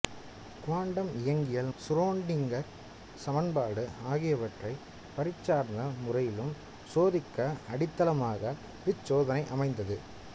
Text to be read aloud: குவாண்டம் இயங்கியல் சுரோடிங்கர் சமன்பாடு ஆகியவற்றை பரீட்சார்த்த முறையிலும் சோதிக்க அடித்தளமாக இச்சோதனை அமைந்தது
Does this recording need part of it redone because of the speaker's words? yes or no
no